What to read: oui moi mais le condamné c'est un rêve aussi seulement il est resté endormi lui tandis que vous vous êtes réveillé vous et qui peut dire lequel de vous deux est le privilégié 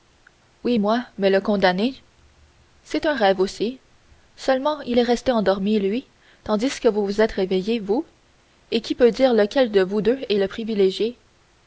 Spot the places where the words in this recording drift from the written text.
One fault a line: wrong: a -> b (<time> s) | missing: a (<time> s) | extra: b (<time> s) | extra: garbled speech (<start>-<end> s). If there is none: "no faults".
no faults